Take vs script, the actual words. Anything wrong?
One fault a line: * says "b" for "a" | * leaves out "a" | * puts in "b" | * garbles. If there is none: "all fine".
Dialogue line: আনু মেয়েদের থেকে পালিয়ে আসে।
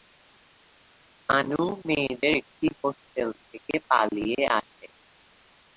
* puts in "একটি হোস্টেল"